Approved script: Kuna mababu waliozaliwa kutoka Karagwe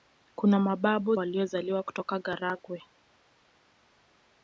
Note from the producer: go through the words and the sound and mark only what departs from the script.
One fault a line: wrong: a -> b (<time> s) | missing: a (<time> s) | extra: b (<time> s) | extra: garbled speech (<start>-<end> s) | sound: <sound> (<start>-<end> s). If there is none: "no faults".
no faults